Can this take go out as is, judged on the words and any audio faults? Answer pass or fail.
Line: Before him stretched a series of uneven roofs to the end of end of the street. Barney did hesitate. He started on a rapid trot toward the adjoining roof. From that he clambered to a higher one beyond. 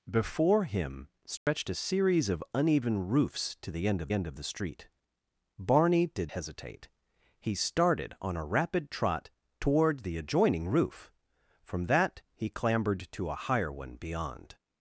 fail